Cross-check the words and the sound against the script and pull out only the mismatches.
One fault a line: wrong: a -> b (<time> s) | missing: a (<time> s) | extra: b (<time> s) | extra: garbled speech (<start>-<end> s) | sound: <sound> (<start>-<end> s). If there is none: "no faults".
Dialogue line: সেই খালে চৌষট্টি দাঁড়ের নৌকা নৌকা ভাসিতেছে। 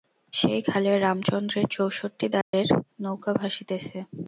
extra: রামচন্দ্রের (1.0 s)
sound: dropout (2.4-2.5 s)
missing: নৌকা (3.3 s)